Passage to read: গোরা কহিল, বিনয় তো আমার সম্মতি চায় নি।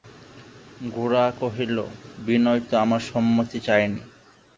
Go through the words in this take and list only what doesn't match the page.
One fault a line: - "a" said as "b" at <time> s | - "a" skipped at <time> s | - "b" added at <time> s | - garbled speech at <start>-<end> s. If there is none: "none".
none